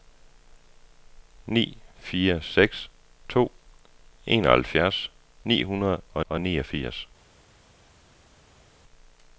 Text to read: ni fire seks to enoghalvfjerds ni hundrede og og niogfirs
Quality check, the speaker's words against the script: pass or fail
pass